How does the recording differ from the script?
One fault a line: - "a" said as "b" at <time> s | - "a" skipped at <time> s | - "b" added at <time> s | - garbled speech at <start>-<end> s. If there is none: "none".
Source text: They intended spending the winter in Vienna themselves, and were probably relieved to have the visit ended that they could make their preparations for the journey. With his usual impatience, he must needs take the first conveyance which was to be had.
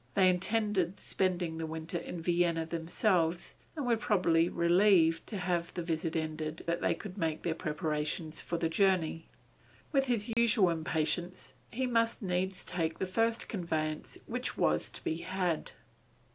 none